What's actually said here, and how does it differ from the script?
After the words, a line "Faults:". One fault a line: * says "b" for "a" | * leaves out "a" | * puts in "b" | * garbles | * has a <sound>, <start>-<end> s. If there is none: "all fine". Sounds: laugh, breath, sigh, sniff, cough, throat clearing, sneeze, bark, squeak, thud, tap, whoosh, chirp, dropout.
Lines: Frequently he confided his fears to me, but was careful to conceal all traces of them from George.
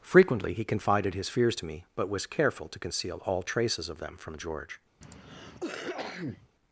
Frequently he confided his fears to me, but was careful to conceal all traces of them from George.
Faults:
* has a cough, 5.0-6.5 s